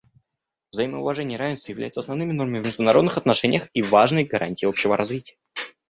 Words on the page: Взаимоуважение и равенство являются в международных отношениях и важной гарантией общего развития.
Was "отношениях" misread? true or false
false